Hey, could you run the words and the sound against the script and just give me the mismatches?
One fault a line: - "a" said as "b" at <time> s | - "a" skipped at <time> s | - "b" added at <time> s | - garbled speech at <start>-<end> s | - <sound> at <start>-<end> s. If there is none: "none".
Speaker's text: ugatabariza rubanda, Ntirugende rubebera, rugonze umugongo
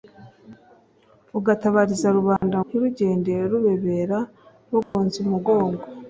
- dropout at 2.4-2.4 s
- dropout at 4.8-4.9 s